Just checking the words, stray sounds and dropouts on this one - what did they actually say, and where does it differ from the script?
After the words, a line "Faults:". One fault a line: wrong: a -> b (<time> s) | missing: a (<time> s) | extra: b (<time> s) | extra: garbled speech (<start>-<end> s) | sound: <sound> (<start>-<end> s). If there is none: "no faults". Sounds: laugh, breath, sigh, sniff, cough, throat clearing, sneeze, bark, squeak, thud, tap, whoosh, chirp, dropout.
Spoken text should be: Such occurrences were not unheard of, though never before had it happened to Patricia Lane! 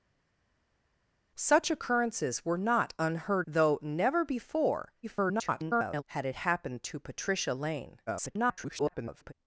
Such occurrences were not unheard though never before [garbled] had it happened to Patricia Lane! [garbled]
Faults:
missing: of (3.5 s)
extra: garbled speech (5.0-6.0 s)
extra: garbled speech (8.1-9.3 s)